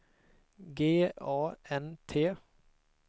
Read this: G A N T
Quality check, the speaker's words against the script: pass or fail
pass